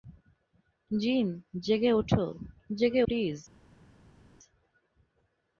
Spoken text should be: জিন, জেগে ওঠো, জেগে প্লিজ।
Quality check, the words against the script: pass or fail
pass